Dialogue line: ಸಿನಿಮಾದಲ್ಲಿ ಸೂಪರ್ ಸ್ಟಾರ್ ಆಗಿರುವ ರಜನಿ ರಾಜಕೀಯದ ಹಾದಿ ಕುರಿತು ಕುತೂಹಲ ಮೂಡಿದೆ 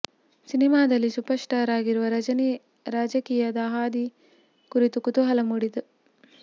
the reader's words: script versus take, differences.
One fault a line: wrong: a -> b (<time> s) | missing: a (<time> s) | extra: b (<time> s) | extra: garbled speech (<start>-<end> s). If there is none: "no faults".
no faults